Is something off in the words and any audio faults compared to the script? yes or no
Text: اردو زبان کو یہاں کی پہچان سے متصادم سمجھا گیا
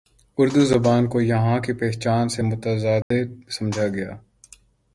yes